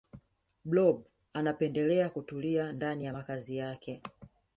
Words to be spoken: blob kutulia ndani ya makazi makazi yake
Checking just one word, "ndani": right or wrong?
right